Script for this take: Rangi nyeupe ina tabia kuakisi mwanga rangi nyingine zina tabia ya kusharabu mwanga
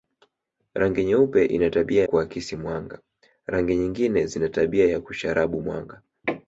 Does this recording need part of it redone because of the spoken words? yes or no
no